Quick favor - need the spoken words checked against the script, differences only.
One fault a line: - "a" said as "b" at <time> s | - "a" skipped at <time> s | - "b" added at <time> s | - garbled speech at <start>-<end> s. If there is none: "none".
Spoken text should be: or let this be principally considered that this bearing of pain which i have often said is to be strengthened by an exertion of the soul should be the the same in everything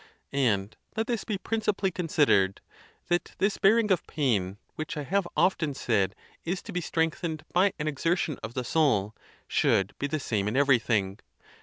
- "or" said as "and" at 0.3 s
- "the" skipped at 10.2 s